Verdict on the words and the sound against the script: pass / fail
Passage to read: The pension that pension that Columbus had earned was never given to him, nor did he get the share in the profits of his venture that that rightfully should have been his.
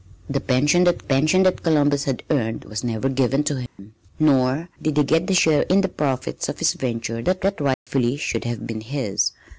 fail